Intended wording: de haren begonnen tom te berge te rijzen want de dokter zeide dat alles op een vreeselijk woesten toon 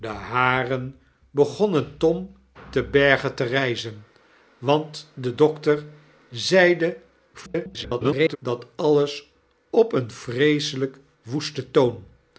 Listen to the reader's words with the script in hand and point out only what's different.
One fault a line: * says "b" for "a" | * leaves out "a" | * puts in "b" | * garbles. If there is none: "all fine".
* garbles